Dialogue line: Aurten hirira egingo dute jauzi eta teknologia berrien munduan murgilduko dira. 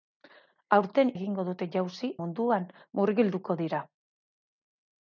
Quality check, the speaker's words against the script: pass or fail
fail